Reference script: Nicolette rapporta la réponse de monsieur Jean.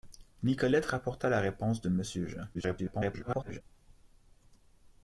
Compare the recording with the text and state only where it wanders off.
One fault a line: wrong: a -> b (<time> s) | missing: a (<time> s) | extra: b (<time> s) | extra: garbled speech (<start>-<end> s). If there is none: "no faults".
extra: garbled speech (2.5-3.6 s)